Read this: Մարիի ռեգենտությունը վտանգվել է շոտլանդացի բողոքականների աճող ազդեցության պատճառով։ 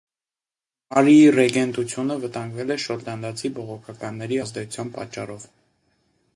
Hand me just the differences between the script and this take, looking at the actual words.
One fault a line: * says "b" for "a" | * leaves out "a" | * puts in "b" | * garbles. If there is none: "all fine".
* leaves out "աճող"